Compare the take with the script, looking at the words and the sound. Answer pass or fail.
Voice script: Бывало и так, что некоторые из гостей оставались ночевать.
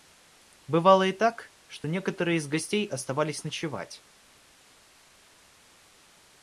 pass